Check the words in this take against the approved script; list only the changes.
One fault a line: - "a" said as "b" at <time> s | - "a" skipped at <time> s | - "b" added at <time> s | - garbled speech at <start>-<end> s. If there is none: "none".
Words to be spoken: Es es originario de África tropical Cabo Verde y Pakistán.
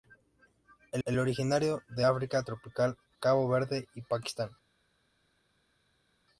none